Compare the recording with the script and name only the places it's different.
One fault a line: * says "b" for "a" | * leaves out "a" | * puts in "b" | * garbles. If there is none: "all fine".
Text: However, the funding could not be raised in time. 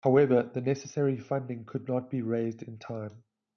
* puts in "necessary"